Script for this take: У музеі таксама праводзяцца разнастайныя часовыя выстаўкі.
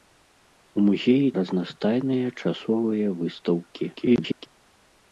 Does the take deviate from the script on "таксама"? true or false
true